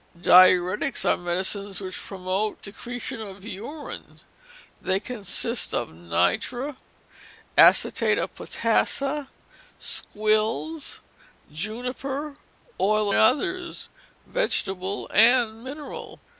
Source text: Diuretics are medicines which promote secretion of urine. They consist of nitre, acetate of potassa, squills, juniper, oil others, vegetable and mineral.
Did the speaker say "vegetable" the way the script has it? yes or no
yes